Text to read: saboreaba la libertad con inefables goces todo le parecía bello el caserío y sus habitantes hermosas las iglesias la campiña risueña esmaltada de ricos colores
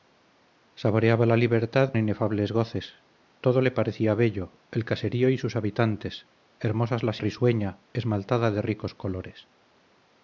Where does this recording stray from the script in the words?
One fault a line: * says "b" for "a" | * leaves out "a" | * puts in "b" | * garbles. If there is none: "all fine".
* leaves out "con"
* leaves out "iglesias la campiña"